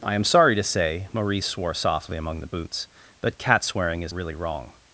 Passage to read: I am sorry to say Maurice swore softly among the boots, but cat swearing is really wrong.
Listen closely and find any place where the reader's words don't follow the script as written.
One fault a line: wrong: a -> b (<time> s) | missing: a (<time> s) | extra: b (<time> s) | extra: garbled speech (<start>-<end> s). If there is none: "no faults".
no faults